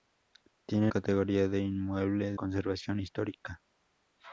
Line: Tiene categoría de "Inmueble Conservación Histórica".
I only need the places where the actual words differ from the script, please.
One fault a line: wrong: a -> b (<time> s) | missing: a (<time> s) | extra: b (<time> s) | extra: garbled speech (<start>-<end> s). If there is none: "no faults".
no faults